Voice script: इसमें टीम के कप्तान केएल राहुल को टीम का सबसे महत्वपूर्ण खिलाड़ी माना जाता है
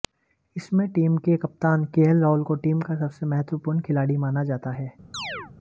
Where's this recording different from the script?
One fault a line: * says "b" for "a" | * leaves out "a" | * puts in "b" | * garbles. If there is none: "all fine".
all fine